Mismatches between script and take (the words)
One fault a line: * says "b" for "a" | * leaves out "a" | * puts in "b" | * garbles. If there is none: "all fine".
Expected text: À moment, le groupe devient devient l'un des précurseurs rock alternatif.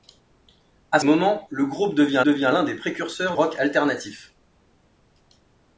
all fine